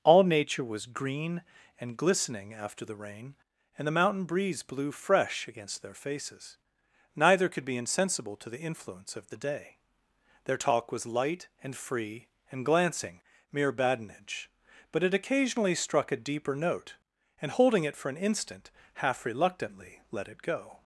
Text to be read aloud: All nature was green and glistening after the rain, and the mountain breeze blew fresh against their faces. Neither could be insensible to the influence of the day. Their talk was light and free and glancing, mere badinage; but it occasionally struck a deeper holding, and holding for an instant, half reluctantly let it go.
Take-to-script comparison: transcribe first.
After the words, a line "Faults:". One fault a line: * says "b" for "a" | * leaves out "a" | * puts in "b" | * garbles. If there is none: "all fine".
All nature was green and glistening after the rain, and the mountain breeze blew fresh against their faces. Neither could be insensible to the influence of the day. Their talk was light and free and glancing, mere badinage; but it occasionally struck a deeper note, and holding it for an instant, half reluctantly let it go.
Faults:
* says "note" for "holding"
* puts in "it"